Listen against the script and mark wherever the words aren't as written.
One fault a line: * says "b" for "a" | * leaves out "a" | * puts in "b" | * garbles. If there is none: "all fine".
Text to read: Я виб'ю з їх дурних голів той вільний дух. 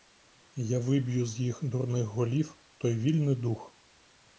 all fine